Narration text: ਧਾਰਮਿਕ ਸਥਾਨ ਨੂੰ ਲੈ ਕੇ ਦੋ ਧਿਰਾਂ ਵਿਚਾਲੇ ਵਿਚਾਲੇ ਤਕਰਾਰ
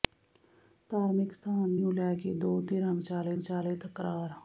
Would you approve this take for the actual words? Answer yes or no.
yes